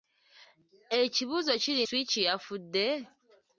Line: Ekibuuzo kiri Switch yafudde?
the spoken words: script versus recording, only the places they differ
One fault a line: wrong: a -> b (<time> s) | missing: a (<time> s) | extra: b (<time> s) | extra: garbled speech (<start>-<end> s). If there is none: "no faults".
no faults